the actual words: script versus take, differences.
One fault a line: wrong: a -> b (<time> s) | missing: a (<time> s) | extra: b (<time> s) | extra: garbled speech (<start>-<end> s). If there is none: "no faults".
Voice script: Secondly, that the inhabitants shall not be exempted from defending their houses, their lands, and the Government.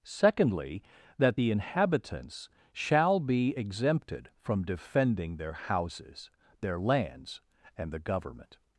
missing: not (3.2 s)